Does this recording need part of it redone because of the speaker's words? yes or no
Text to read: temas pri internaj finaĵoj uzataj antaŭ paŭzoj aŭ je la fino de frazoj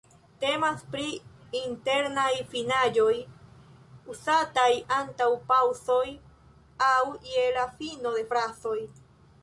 no